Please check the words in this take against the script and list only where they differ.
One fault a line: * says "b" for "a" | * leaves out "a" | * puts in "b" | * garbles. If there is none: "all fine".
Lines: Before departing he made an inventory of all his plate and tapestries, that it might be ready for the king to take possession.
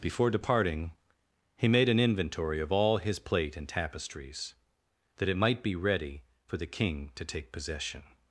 all fine